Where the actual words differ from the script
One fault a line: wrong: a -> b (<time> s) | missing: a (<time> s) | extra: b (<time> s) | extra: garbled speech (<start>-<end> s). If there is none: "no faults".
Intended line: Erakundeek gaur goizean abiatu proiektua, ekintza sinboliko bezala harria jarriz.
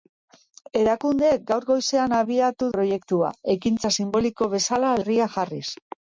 no faults